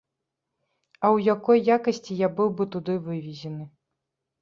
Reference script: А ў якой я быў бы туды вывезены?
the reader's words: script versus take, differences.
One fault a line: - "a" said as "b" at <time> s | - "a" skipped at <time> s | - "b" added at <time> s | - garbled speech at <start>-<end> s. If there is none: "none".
- "якасці" added at 1.8 s